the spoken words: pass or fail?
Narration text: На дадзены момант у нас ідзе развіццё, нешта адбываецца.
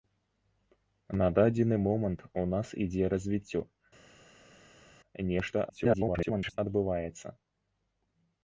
fail